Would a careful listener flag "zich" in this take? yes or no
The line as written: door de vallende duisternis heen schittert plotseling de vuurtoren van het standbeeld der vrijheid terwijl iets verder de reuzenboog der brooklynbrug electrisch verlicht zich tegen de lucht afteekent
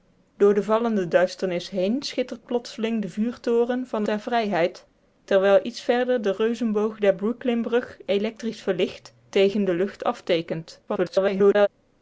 yes